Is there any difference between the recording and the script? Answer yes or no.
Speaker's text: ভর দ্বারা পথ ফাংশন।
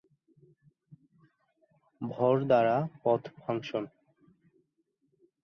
no